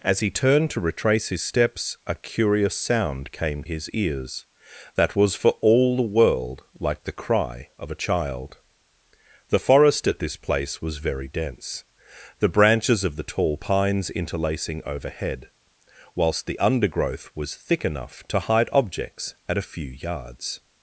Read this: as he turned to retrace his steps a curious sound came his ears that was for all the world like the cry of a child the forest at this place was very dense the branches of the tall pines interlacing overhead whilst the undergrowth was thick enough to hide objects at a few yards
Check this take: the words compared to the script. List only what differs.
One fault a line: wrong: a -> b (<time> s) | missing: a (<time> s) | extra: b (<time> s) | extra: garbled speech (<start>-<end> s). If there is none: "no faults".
no faults